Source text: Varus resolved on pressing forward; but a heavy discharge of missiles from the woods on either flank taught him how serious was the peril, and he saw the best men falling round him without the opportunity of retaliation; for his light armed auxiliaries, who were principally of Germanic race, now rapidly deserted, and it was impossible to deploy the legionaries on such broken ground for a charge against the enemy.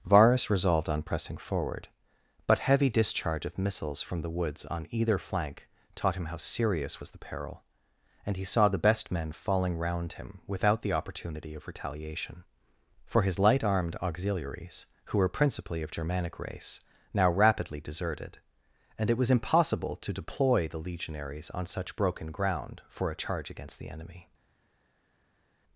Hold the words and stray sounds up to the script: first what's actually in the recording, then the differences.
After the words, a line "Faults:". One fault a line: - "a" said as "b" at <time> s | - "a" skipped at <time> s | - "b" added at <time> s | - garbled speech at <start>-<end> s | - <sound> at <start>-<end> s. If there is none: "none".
Varus resolved on pressing forward; but heavy discharge of missiles from the woods on either flank taught him how serious was the peril, and he saw the best men falling round him without the opportunity of retaliation; for his light armed auxiliaries, who were principally of Germanic race, now rapidly deserted, and it was impossible to deploy the legionaries on such broken ground for a charge against the enemy.
Faults:
- "a" skipped at 2.6 s